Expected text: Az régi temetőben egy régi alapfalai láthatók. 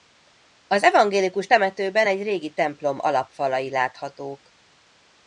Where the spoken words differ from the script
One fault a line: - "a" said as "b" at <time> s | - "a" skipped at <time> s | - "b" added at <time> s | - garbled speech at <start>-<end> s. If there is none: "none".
- "régi" said as "evangélikus" at 0.8 s
- "templom" added at 2.5 s